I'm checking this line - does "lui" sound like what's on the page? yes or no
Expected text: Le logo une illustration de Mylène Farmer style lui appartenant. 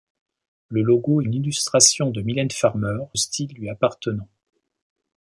yes